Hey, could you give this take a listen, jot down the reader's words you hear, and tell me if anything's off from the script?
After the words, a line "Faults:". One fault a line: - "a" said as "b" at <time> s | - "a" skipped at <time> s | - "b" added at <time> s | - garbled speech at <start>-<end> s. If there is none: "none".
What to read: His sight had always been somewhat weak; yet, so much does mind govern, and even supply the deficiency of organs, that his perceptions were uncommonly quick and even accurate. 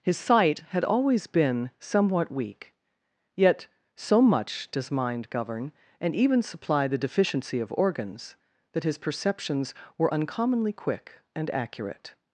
His sight had always been somewhat weak; yet, so much does mind govern, and even supply the deficiency of organs, that his perceptions were uncommonly quick and accurate.
Faults:
- "even" skipped at 11.5 s